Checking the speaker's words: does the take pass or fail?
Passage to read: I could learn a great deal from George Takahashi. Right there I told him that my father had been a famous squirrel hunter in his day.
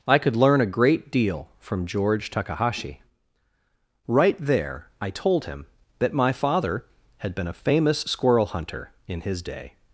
pass